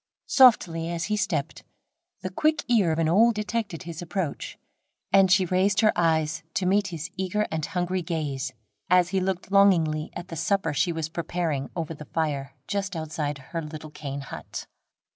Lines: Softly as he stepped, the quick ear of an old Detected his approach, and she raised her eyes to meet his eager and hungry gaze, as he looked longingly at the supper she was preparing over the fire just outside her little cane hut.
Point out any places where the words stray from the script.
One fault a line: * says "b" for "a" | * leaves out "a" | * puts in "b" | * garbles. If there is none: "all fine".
all fine